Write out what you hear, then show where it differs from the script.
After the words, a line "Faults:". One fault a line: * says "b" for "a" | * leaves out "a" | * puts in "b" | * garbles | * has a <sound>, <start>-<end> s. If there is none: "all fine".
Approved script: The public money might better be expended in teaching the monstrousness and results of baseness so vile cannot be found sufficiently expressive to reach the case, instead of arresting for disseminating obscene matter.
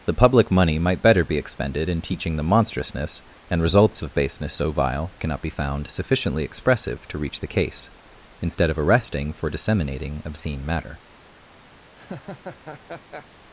The public money might better be expended in teaching the monstrousness and results of baseness so vile cannot be found sufficiently expressive to reach the case, instead of arresting for disseminating obscene matter.
Faults:
* has a laugh, 12.0-13.3 s